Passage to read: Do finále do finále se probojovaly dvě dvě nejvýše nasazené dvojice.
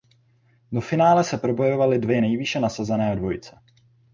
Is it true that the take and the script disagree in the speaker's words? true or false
true